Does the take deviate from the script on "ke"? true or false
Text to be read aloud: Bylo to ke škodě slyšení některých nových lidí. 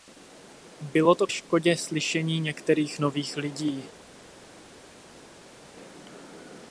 true